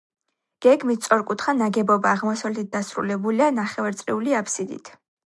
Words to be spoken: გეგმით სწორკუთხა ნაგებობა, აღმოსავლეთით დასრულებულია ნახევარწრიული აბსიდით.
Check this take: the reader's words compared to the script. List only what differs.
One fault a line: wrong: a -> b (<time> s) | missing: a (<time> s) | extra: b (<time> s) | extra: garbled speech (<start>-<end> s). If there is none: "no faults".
no faults